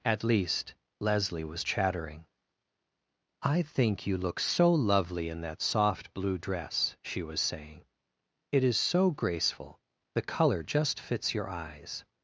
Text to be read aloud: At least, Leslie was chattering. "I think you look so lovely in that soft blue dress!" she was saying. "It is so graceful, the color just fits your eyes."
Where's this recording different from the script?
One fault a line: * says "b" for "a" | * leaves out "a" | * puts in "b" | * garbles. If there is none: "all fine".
all fine